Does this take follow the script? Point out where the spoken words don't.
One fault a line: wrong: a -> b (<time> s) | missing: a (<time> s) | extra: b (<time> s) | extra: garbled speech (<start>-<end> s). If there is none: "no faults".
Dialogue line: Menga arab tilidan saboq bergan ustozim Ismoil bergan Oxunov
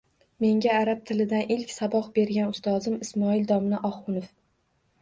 extra: ilk (1.6 s)
wrong: bergan -> domla (3.6 s)